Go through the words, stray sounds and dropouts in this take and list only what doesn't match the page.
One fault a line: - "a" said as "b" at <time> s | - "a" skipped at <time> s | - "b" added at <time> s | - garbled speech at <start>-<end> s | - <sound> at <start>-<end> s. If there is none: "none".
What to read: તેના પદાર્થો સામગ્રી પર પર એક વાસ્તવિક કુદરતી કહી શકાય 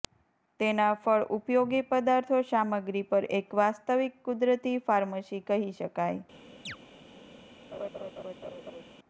- "ફળ ઉપયોગી" added at 1.0 s
- "પર" skipped at 3.3 s
- "ફાર્મસી" added at 4.9 s
- chirp at 6.7-6.8 s
- laugh at 7.7-8.8 s